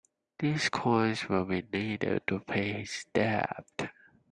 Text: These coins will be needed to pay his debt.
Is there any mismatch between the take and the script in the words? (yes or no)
no